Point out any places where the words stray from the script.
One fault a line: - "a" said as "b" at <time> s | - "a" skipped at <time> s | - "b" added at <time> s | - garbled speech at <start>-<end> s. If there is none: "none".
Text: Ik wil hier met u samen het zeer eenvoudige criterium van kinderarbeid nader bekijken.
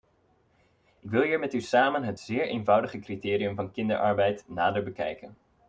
none